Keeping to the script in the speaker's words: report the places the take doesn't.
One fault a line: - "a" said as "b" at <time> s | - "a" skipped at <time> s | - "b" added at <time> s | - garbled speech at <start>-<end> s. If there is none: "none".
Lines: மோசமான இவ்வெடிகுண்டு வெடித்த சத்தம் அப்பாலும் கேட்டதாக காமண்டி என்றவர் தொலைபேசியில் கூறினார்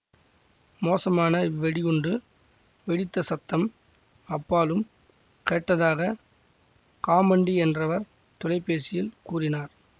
none